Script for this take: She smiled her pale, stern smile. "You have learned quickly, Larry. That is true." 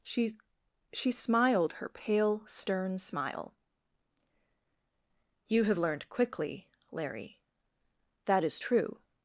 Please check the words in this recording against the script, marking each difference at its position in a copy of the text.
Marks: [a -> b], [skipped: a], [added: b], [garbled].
She [added: she] smiled her pale, stern smile. "You have learned quickly, Larry. That is true."